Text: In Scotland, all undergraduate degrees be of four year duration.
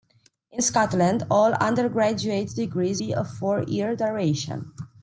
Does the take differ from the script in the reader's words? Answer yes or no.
no